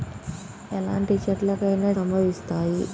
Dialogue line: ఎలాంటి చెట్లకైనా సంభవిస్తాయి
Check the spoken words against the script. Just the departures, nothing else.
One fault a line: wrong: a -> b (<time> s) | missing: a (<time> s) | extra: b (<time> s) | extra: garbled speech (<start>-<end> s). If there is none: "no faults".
no faults